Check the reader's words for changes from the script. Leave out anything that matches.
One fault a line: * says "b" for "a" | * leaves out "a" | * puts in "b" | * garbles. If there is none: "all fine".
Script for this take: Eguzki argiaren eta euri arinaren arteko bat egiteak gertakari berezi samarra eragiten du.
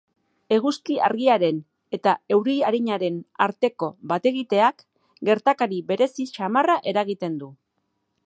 all fine